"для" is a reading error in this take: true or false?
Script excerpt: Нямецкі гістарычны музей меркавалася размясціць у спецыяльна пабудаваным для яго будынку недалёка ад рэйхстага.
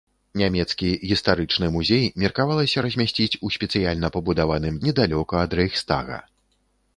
true